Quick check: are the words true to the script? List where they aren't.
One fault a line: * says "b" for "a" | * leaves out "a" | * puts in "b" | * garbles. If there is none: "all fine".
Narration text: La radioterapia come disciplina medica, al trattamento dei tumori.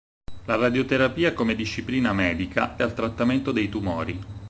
all fine